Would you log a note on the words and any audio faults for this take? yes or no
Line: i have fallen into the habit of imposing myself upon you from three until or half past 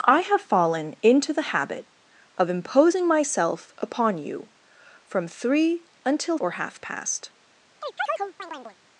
yes